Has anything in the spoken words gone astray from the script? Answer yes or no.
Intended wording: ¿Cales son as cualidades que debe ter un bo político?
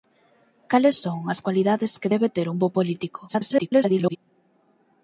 yes